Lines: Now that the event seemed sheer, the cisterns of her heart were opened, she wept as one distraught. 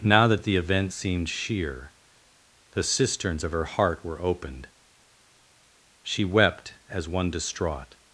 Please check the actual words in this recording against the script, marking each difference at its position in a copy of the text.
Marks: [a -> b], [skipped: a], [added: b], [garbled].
Now that the event seemed sheer, the cisterns of her heart were opened, she wept as one distraught.